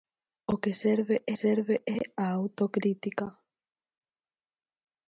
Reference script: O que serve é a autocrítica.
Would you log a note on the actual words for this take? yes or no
yes